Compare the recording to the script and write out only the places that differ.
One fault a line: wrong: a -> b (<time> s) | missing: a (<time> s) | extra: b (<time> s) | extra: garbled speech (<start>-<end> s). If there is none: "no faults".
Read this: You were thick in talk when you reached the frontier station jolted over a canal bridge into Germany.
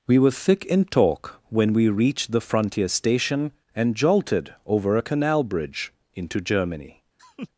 wrong: You -> We (0.1 s)
wrong: you -> we (1.7 s)
extra: and (3.8 s)